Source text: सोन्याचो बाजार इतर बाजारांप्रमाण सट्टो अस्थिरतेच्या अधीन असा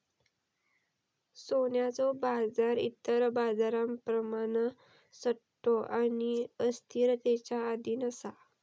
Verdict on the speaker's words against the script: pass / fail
fail